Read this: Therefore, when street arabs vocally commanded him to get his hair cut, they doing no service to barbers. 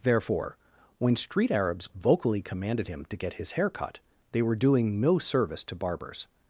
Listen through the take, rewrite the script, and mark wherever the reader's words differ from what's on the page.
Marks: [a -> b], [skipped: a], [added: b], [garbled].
Therefore, when street arabs vocally commanded him to get his hair cut, they [added: were] doing no service to barbers.